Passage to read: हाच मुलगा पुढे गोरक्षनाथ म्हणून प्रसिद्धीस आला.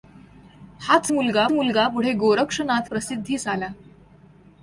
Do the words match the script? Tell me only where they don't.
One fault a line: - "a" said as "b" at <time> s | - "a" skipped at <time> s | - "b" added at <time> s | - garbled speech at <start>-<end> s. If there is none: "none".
- "मुलगा" added at 1.5 s
- "म्हणून" skipped at 2.9 s